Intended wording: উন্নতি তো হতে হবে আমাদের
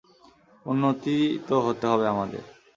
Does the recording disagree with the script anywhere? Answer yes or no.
no